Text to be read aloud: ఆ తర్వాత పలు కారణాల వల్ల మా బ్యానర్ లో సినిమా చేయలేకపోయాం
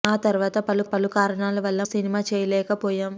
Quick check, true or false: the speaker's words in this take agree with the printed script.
false